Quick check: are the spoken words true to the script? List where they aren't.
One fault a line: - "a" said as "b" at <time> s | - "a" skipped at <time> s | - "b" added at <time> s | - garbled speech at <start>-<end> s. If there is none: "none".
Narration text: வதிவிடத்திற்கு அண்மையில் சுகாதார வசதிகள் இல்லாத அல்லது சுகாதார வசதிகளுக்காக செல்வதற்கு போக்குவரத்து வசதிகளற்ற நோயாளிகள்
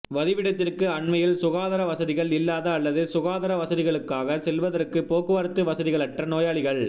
none